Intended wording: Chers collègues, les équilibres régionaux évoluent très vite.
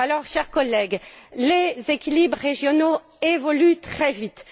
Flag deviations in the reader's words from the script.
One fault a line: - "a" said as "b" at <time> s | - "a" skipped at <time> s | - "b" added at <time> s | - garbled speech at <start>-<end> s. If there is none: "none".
none